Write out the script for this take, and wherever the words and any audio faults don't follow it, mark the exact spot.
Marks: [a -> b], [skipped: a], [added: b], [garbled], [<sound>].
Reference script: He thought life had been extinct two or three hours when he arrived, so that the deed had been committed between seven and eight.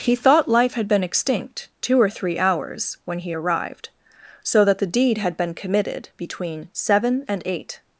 He thought life had been extinct two or three hours when he arrived, so that the deed had been committed between seven and eight.